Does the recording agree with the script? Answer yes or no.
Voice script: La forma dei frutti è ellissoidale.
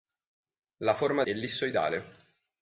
no